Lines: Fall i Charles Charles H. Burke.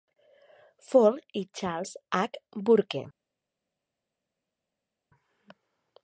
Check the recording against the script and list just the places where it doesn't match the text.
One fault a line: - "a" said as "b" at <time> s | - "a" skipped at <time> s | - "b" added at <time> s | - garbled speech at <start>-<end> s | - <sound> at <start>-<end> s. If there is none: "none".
- "Charles" skipped at 1.9 s